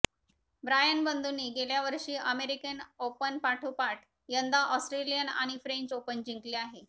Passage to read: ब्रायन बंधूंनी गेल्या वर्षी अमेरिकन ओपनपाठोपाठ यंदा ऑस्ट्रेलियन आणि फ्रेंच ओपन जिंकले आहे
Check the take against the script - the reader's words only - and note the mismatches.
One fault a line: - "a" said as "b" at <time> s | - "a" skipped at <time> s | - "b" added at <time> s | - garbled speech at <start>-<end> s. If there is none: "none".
none